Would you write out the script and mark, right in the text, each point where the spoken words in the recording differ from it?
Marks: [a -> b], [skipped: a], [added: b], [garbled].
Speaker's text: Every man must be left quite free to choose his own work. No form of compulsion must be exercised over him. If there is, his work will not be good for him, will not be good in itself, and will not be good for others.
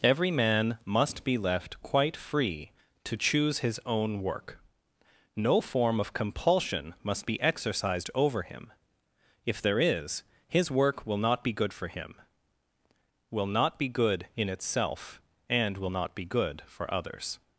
Every man must be left quite free to choose his own work. No form of compulsion must be exercised over him. If there is, his work will not be good for him, will not be good in itself, and will not be good for others.